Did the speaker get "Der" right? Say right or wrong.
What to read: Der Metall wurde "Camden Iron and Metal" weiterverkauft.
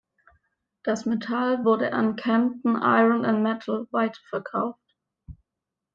wrong